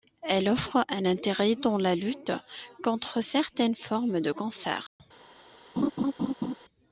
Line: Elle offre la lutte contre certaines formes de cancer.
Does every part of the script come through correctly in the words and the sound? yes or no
no